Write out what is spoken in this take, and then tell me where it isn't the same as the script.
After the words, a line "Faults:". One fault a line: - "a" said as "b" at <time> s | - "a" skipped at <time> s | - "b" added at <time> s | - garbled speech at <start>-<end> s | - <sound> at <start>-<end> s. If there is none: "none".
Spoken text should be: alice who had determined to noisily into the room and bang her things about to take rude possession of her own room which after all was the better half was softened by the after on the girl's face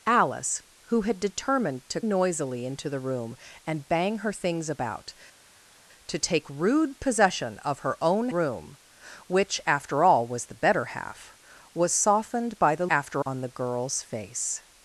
alice who had determined to noisily into the room and bang her things about to take rude possession of her own room which after all was the better half was softened by the after on the girl's face
Faults:
none